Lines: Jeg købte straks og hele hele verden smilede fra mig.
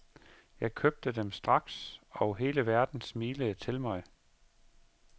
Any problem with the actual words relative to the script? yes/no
yes